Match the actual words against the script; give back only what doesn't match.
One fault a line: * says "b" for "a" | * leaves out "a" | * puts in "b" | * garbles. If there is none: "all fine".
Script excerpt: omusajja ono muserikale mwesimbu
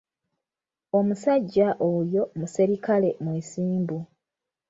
* says "oyo" for "ono"